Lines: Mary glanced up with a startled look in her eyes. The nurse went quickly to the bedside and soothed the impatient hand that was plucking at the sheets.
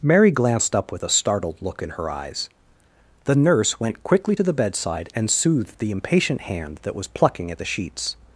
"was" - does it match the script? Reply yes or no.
yes